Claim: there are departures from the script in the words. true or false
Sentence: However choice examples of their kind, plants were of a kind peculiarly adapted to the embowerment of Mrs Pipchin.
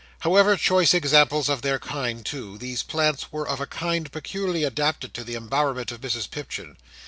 true